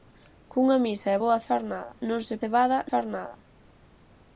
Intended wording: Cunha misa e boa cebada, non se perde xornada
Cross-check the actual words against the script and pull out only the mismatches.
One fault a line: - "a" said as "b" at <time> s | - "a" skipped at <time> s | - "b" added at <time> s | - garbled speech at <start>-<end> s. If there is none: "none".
- "cebada" said as "xornada" at 1.5 s
- "perde" said as "cebada" at 2.4 s